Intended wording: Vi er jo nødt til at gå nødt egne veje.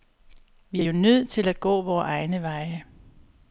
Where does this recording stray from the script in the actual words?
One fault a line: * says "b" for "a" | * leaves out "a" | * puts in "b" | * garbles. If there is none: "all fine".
* says "vore" for "nødt"